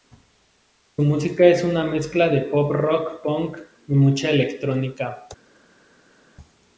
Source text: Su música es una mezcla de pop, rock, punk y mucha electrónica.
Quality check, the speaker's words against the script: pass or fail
pass